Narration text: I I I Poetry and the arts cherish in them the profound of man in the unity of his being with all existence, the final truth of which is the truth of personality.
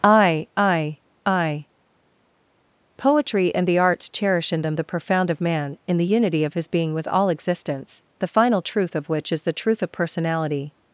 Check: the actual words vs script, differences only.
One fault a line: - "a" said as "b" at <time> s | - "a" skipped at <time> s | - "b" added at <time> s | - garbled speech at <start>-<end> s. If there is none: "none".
none